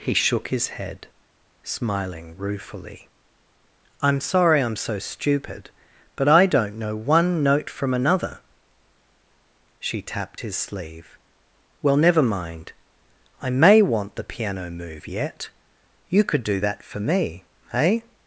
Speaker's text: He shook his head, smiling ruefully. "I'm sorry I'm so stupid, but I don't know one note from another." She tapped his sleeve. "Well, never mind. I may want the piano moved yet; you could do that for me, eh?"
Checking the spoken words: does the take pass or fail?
fail